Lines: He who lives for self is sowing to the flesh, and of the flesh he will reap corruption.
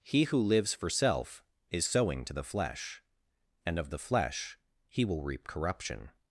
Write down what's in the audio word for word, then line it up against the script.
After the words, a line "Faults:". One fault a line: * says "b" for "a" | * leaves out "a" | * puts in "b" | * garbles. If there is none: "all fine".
He who lives for self is sowing to the flesh, and of the flesh he will reap corruption.
Faults:
all fine